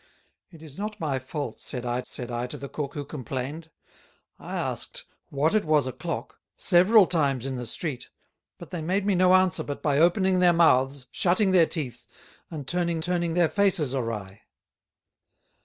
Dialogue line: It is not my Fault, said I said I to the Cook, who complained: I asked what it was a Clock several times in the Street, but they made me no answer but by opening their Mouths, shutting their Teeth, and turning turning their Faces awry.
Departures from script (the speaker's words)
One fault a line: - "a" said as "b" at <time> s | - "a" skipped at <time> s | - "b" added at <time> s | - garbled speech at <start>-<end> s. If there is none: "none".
none